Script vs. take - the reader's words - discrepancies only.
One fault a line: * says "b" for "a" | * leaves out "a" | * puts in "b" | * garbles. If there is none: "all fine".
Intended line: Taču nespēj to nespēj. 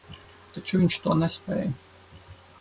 * says "viņš" for "nespēj"